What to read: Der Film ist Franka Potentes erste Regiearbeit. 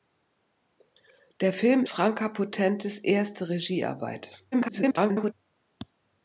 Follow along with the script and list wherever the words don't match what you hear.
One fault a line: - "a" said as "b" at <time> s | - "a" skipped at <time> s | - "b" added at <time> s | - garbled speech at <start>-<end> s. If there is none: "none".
- "ist" skipped at 1.9 s
- garbled speech at 4.5-5.3 s